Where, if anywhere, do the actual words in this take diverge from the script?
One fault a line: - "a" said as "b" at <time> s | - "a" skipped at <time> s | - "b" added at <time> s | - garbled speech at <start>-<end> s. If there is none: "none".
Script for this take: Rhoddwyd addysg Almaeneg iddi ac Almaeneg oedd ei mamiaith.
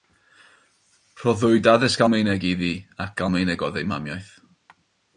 none